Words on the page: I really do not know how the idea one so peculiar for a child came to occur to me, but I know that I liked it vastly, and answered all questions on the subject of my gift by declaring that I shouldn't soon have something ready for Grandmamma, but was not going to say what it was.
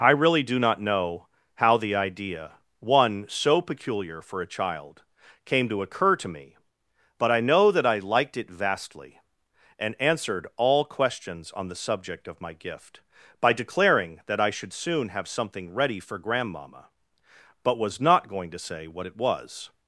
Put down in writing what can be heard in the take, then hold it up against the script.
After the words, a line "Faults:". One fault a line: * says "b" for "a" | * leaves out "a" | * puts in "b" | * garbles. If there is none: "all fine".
I really do not know how the idea one so peculiar for a child came to occur to me, but I know that I liked it vastly, and answered all questions on the subject of my gift by declaring that I should soon have something ready for Grandmamma, but was not going to say what it was.
Faults:
* says "should" for "shouldn't"